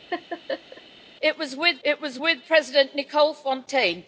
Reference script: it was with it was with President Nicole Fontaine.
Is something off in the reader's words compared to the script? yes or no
no